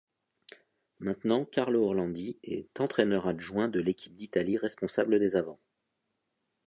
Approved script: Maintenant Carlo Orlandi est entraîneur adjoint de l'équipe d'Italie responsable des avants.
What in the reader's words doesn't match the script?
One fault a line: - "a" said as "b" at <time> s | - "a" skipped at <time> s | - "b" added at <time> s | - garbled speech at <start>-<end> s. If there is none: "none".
none